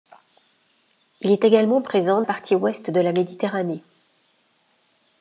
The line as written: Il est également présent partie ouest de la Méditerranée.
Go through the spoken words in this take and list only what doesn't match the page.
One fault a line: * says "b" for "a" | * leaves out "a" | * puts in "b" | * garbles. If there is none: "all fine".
all fine